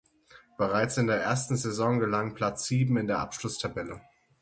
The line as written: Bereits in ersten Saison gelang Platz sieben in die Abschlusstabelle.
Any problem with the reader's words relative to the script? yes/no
yes